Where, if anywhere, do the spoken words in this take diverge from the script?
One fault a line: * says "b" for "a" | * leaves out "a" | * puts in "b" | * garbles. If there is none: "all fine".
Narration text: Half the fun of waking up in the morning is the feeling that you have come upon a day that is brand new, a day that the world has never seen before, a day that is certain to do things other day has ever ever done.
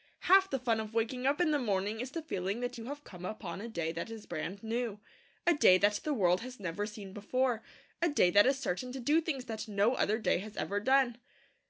* puts in "that no"
* leaves out "ever"